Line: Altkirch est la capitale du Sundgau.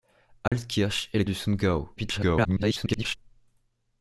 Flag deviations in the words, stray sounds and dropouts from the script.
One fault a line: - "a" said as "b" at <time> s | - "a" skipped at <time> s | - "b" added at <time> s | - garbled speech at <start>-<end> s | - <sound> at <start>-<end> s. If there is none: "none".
- dropout at 0.5-0.5 s
- "capitale" skipped at 1.2 s
- garbled speech at 2.0-3.2 s